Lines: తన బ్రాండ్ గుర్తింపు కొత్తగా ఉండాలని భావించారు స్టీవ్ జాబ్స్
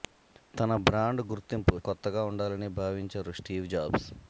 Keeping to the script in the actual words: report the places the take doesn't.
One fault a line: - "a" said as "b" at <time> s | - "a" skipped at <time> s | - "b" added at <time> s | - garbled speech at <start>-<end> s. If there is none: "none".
none